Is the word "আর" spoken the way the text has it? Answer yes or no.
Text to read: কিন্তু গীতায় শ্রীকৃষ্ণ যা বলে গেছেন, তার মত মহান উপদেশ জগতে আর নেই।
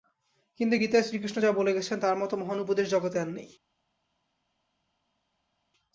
yes